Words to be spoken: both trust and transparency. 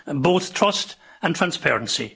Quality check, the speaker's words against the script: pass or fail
pass